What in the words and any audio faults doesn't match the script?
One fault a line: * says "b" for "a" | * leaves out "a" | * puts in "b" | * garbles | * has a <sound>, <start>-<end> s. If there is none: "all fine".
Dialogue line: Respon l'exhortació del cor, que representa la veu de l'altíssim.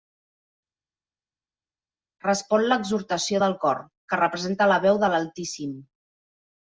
all fine